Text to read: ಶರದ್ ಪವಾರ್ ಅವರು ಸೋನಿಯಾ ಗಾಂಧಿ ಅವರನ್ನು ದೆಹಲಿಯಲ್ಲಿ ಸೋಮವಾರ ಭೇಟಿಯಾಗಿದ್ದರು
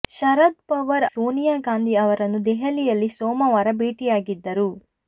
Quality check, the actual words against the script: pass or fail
fail